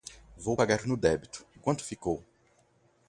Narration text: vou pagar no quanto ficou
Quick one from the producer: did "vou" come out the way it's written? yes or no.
yes